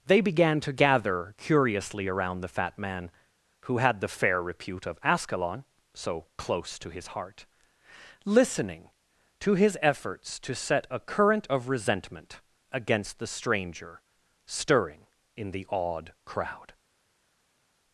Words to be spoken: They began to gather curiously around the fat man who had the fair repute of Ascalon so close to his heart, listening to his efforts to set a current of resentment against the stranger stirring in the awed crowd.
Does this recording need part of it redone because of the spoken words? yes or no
no